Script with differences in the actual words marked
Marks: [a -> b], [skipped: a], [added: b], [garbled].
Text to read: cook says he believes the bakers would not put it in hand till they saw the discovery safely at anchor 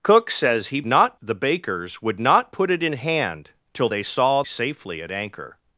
cook says he [believes -> not] the bakers would not put it in hand till they saw [skipped: the discovery] safely at anchor